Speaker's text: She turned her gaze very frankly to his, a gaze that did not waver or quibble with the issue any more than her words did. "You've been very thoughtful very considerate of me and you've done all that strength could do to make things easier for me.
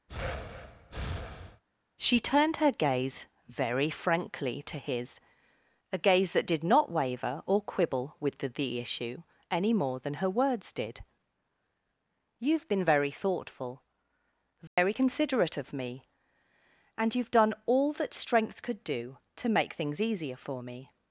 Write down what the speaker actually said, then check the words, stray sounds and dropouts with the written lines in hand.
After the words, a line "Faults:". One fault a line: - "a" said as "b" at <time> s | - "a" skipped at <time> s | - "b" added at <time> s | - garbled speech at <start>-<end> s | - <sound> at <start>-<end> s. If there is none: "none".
She turned her gaze very frankly to his, a gaze that did not waver or quibble with the the issue any more than her words did. "You've been very thoughtful very considerate of me and you've done all that strength could do to make things easier for me.
Faults:
- breath at 0.1-1.6 s
- "the" added at 8.5 s
- dropout at 14.7-14.8 s